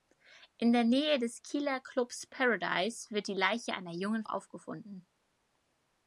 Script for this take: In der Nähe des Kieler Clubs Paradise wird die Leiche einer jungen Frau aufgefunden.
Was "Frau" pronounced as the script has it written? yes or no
no